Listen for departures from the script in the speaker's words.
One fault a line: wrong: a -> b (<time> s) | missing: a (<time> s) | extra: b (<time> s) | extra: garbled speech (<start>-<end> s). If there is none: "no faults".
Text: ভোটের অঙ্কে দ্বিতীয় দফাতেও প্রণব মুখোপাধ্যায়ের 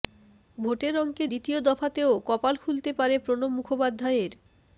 extra: কপাল খুলতে পারে (2.3 s)